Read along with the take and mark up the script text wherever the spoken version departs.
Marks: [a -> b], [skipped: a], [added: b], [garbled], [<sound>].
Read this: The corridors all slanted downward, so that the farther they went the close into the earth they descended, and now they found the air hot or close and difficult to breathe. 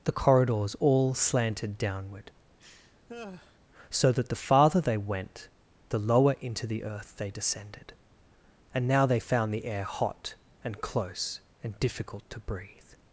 The corridors all slanted downward, [laugh] so that the farther they went the [close -> lower] into the earth they descended, and now they found the air hot [or -> and] close and difficult to breathe.